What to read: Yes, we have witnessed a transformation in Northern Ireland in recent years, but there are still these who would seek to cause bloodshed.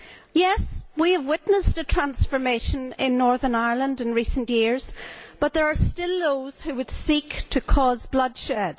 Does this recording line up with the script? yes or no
no